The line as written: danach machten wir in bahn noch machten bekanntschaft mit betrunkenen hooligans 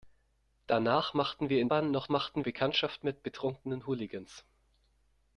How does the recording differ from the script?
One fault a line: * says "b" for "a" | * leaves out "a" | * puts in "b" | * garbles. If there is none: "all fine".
all fine